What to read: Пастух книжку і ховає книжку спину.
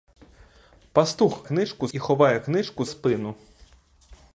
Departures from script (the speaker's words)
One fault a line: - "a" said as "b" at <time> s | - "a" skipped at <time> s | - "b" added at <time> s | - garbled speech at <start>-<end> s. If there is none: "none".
none